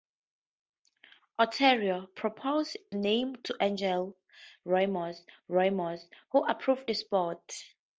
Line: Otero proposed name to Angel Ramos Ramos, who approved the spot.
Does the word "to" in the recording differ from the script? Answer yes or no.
no